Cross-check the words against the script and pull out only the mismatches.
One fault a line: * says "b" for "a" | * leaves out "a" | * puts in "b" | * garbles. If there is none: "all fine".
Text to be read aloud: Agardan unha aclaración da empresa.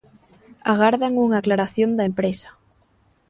all fine